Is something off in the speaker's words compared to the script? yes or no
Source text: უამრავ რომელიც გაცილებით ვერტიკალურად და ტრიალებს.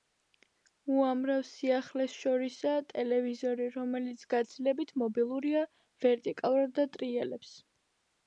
yes